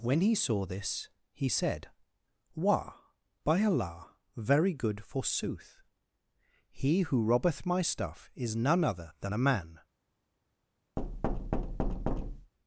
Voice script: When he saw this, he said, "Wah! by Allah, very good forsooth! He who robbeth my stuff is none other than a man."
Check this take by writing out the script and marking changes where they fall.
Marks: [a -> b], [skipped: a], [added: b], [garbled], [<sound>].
When he saw this, he said, "Wah! by Allah, very good forsooth! He who robbeth my stuff is none other than a man." [thud]